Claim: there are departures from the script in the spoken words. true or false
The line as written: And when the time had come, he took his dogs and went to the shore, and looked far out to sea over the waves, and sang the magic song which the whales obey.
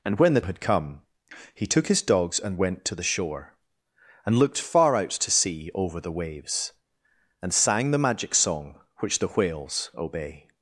true